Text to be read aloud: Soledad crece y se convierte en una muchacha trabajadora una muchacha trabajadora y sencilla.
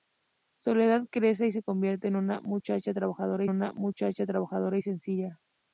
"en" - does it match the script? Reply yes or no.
yes